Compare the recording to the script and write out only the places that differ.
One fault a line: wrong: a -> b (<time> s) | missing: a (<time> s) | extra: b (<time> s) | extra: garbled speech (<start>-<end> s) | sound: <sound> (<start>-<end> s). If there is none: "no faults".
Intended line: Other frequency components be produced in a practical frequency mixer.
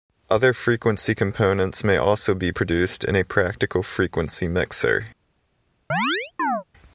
extra: may also (1.8 s)
sound: chirp (5.9-6.6 s)